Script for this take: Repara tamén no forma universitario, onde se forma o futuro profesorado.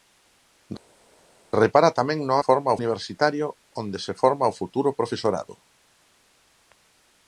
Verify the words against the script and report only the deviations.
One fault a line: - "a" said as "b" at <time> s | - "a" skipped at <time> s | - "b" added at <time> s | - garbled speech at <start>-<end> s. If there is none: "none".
none